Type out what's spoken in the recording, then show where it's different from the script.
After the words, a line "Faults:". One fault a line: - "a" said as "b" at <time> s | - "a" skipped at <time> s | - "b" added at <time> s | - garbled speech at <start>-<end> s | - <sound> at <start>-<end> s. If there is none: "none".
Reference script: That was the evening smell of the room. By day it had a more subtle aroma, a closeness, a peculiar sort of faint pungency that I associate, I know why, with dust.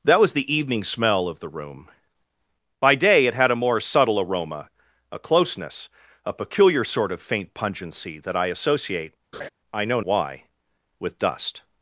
That was the evening smell of the room. By day it had a more subtle aroma, a closeness, a peculiar sort of faint pungency that I associate, I know why, with dust.
Faults:
- laugh at 9.3-9.5 s